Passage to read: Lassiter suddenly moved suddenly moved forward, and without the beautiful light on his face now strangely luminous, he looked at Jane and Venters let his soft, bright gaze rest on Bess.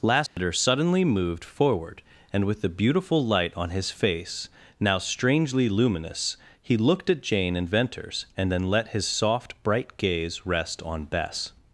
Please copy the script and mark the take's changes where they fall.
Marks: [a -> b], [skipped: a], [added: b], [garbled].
Lassiter suddenly moved [skipped: suddenly moved] forward, and [without -> with] the beautiful light on his face now strangely luminous, he looked at Jane and Venters [added: and then] let his soft, bright gaze rest on Bess.